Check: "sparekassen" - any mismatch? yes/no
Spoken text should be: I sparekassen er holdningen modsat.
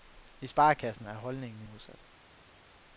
no